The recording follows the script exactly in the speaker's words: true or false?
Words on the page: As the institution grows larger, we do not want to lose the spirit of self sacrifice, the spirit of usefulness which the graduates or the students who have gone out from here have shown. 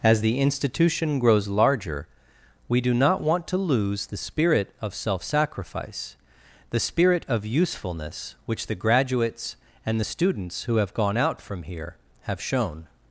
false